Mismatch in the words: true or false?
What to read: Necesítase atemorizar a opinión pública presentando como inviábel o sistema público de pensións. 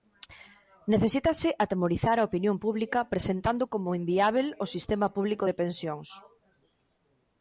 false